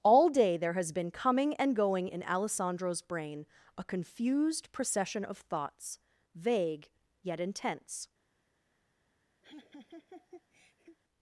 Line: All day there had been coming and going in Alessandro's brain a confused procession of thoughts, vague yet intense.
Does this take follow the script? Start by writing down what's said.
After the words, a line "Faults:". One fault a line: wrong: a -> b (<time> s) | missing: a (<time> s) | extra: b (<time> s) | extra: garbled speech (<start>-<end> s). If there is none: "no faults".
All day there has been coming and going in Alessandro's brain a confused procession of thoughts, vague yet intense.
Faults:
wrong: had -> has (0.7 s)